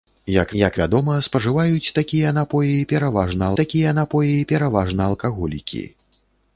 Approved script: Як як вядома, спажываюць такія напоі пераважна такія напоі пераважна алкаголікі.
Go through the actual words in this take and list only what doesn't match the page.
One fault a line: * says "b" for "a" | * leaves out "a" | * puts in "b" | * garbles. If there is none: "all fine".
all fine